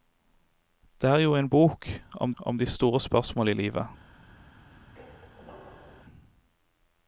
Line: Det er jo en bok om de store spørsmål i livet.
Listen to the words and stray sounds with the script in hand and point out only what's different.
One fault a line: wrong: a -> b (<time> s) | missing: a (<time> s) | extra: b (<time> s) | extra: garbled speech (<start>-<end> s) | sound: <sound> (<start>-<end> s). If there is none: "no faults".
extra: om (2.4 s)
sound: squeak (5.0-6.0 s)